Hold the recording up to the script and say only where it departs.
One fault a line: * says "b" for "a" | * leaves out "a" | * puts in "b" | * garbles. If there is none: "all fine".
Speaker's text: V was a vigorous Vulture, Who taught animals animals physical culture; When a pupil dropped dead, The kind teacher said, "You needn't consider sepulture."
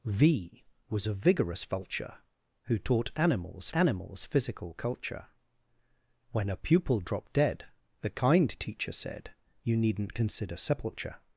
all fine